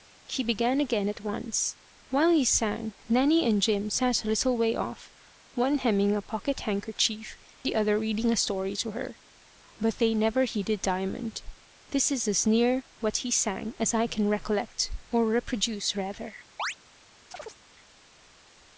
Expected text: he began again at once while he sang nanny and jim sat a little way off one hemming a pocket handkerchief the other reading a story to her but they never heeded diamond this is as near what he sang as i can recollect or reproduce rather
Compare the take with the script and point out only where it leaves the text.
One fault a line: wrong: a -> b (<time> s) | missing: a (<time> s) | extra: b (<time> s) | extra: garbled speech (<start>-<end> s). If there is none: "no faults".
no faults